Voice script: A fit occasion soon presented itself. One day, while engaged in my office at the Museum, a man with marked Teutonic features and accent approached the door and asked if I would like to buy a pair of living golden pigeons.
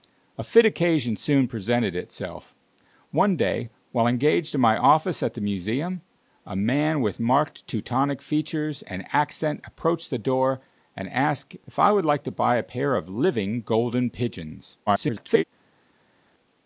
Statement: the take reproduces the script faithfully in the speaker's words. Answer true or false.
false